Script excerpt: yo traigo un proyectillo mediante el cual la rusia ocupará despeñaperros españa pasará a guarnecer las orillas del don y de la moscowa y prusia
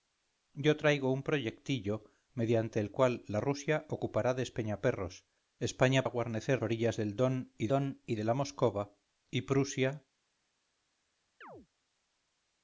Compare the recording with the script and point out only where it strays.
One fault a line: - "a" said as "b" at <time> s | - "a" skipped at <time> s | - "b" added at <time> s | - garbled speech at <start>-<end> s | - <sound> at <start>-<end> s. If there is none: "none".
- "pasará" skipped at 6.0 s
- "las" skipped at 6.6 s
- "don y" added at 7.7 s
- chirp at 11.4-11.7 s